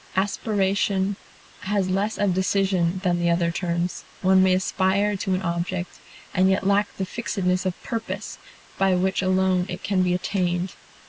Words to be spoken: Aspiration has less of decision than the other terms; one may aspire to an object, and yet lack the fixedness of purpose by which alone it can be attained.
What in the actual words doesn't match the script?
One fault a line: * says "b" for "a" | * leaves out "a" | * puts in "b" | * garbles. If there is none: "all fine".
all fine